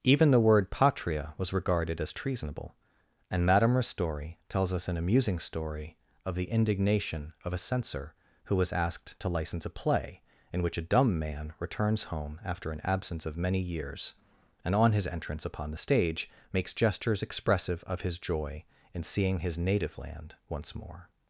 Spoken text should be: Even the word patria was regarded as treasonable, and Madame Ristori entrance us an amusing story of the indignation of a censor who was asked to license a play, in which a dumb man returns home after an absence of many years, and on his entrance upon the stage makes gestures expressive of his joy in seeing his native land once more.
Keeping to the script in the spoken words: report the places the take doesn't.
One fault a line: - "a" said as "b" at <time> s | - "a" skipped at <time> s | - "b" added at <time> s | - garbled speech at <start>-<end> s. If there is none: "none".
- "entrance" said as "tells" at 4.5 s